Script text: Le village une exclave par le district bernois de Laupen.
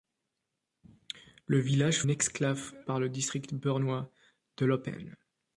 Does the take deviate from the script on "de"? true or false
false